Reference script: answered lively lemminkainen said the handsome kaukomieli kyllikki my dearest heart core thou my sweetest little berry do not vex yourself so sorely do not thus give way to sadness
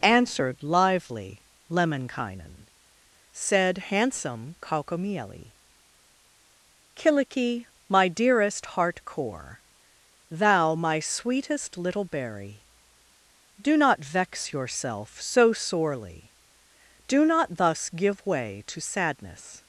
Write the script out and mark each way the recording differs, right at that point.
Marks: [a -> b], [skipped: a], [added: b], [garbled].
answered lively lemminkainen said [skipped: the] handsome kaukomieli kyllikki my dearest heart core thou my sweetest little berry do not vex yourself so sorely do not thus give way to sadness